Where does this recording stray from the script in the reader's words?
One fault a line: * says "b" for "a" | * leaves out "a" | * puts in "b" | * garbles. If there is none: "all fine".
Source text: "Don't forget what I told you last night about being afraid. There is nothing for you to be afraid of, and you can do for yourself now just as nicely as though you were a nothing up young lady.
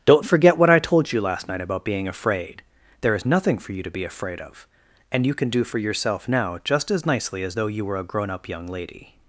* says "grown" for "nothing"